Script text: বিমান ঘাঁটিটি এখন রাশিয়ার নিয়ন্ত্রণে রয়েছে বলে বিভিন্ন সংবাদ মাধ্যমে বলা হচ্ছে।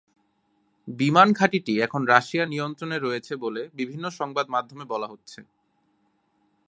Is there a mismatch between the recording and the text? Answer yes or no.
no